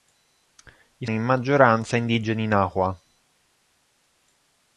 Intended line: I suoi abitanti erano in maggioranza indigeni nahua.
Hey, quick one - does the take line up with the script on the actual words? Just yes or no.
no